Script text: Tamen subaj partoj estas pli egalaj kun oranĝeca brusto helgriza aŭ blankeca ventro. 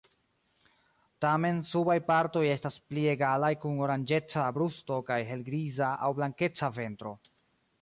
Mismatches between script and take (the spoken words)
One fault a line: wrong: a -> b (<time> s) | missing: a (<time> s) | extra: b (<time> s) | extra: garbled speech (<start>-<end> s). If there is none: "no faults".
extra: kaj (5.1 s)